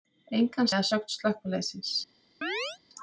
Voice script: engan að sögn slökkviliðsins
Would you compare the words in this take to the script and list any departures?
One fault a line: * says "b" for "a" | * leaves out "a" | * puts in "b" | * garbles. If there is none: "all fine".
all fine